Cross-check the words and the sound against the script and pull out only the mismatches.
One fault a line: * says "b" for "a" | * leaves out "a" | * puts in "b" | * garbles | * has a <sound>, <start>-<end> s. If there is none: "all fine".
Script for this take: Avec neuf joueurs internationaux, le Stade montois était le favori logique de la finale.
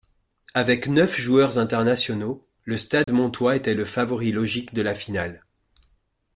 * has a dropout, 3.0-3.1 s